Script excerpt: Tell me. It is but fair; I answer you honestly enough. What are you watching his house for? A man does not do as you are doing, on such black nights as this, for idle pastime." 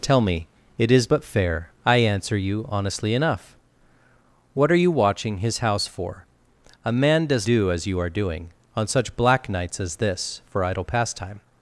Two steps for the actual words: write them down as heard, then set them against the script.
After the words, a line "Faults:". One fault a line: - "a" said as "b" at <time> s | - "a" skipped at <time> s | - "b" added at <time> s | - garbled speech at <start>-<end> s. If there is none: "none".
Tell me. It is but fair; I answer you honestly enough. What are you watching his house for? A man does do as you are doing, on such black nights as this, for idle pastime."
Faults:
- "not" skipped at 7.5 s